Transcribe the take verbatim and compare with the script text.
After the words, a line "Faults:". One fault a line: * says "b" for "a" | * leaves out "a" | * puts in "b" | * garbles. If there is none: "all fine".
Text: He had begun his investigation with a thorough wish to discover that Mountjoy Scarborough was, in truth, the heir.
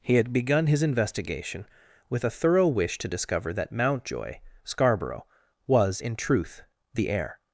He had begun his investigation with a thorough wish to discover that Mountjoy Scarborough was, in truth, the heir.
Faults:
all fine